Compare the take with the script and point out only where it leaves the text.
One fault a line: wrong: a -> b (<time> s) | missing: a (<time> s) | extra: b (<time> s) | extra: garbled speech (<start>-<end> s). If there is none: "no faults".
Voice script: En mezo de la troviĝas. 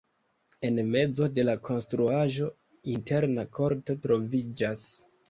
extra: konstruaĵo interna korto (1.7 s)